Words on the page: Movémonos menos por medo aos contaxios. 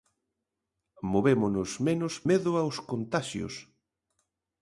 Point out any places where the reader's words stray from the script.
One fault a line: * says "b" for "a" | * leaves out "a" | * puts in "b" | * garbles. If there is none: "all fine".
* leaves out "por"